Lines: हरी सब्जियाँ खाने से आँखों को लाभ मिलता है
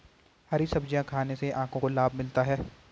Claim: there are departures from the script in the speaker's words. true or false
false